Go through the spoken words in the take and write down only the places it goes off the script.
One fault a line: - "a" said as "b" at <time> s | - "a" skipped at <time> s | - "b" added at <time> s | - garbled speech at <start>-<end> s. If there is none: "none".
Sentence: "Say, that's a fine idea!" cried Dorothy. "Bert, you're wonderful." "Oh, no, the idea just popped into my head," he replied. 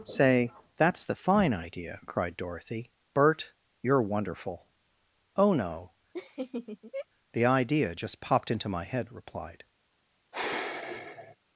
- "a" said as "the" at 1.0 s
- "he" skipped at 9.1 s